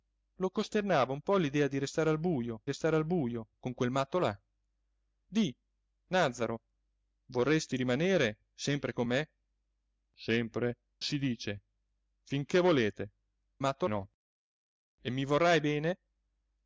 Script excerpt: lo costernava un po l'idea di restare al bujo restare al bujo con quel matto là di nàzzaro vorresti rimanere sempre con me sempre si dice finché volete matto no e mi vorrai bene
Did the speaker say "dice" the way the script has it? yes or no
yes